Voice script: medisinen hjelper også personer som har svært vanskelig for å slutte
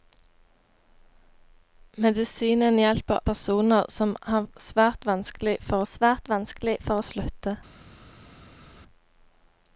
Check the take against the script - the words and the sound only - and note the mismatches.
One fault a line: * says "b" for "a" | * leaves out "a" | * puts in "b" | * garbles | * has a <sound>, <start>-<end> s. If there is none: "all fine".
* leaves out "også"
* puts in "svært vanskelig for"